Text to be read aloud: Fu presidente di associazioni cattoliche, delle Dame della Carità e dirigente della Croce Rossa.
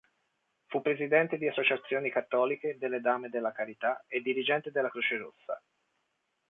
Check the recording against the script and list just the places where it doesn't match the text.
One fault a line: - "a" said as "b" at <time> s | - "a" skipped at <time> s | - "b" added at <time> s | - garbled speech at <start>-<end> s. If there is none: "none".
none